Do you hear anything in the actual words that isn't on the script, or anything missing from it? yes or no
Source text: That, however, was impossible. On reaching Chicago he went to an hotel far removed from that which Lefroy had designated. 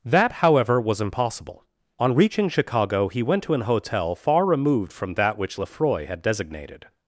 no